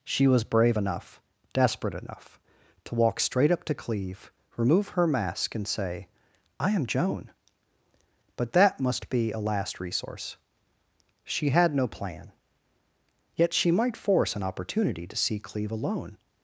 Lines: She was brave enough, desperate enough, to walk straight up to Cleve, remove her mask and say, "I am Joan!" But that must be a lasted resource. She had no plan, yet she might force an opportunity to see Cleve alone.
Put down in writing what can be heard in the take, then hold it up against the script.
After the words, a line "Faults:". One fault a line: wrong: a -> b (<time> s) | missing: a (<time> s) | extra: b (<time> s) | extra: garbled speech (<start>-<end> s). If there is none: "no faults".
She was brave enough, desperate enough, to walk straight up to Cleve, remove her mask and say, "I am Joan!" But that must be a last resource. She had no plan, yet she might force an opportunity to see Cleve alone.
Faults:
wrong: lasted -> last (9.4 s)